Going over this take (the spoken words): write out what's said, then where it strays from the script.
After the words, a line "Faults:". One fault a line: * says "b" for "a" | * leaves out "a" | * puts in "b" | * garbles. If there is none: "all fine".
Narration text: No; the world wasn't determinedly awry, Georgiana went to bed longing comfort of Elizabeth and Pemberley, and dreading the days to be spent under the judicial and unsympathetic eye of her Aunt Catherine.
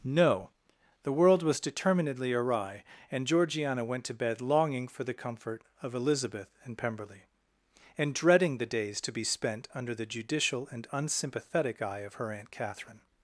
No; the world was determinedly awry, and Georgiana went to bed longing for the comfort of Elizabeth and Pemberley, and dreading the days to be spent under the judicial and unsympathetic eye of her Aunt Catherine.
Faults:
* says "was" for "wasn't"
* puts in "and"
* puts in "for the"